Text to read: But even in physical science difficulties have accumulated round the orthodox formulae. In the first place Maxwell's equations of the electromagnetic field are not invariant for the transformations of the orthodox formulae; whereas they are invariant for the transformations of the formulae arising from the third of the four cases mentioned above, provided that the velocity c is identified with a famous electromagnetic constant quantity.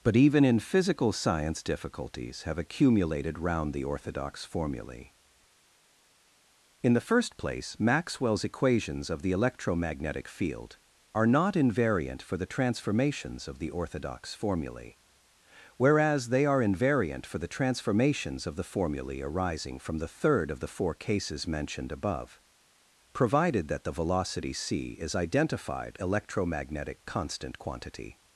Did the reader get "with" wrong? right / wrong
wrong